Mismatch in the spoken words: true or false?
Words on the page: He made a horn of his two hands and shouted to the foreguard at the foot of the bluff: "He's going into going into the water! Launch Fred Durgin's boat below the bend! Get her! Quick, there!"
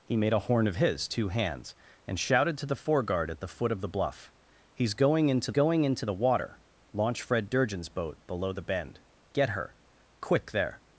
false